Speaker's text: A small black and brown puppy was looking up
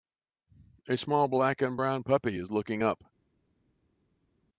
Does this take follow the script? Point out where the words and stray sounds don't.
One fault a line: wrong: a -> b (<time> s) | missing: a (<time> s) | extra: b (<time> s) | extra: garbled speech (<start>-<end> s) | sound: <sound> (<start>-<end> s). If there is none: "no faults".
wrong: was -> is (2.4 s)